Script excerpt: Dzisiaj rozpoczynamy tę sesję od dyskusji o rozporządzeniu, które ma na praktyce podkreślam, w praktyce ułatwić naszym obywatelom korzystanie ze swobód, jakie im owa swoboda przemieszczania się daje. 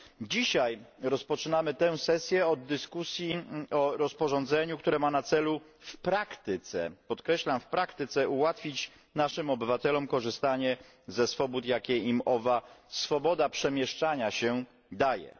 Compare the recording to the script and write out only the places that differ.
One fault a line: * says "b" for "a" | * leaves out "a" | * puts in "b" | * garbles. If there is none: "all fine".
* puts in "celu w"